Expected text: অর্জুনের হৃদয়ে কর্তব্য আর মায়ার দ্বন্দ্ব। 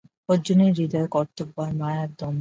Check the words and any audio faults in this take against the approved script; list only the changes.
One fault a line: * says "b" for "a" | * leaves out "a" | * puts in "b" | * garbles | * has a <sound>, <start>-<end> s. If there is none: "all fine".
all fine